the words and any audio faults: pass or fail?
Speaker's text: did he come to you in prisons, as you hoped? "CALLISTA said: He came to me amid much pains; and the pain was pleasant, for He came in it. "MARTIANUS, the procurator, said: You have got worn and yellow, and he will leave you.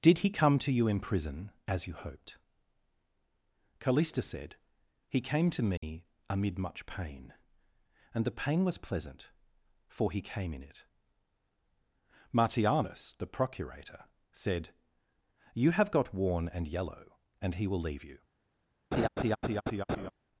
fail